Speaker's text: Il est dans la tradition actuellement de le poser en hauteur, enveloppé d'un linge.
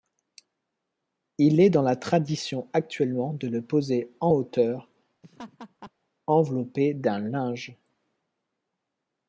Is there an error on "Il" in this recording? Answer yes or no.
no